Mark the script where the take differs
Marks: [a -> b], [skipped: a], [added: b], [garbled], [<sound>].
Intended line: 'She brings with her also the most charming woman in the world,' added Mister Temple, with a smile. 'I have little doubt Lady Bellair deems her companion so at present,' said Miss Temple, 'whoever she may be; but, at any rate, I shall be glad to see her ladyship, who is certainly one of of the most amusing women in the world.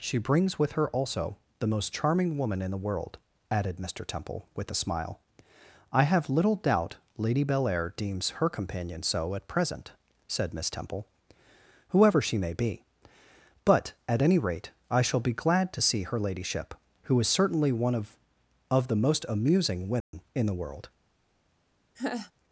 'She brings with her also the most charming woman in the world,' added Mister Temple, with a smile. 'I have little doubt Lady Bellair deems her companion so at present,' said Miss Temple, 'whoever she may be; but, at any rate, I shall be glad to see her ladyship, who is certainly one of of the most amusing women [dropout] in the world. [laugh]